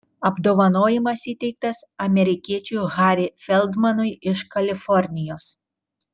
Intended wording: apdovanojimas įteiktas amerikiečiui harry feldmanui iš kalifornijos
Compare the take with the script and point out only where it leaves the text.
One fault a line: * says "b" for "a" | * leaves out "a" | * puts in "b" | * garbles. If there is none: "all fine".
all fine